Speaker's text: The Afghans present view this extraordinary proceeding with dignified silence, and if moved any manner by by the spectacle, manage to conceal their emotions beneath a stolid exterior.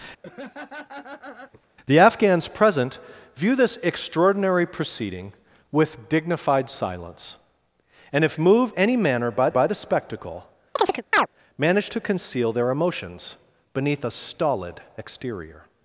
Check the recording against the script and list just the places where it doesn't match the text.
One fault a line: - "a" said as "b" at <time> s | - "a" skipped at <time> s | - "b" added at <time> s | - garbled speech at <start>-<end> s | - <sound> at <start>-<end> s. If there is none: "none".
- laugh at 0.2-1.7 s
- chirp at 10.8-11.3 s